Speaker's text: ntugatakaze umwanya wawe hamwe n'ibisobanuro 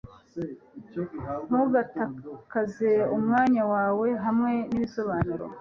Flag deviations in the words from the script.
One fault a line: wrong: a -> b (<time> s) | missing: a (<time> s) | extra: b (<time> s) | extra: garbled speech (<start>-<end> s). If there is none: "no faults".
no faults